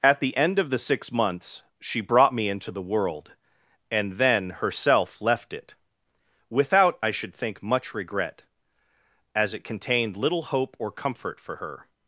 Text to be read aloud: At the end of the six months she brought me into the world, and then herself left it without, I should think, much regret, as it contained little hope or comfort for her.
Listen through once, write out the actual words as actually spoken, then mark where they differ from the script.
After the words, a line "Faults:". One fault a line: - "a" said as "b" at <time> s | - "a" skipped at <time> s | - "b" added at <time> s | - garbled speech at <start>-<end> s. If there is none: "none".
At the end of the six months she brought me into the world, and then herself left it without, I should think, much regret, as it contained little hope or comfort for her.
Faults:
none